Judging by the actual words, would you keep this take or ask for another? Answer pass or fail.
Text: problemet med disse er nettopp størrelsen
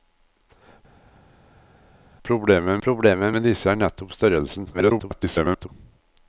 fail